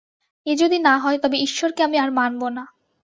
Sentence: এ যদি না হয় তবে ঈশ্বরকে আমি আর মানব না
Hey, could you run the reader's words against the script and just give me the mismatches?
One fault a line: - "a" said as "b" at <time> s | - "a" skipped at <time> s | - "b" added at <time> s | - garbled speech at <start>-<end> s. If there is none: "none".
none